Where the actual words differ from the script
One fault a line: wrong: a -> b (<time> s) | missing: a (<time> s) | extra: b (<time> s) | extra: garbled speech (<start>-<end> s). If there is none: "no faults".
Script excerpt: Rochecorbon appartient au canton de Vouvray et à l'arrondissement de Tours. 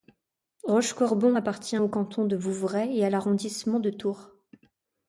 no faults